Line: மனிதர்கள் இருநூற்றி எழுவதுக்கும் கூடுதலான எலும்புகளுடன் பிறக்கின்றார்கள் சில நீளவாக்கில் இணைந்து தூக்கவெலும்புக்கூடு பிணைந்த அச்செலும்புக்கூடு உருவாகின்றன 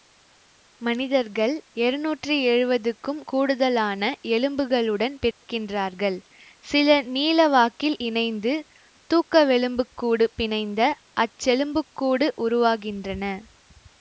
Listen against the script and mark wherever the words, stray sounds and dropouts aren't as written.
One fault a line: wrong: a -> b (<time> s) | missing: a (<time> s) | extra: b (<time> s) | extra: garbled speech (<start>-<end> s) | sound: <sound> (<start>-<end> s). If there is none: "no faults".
sound: dropout (5.3-5.4 s)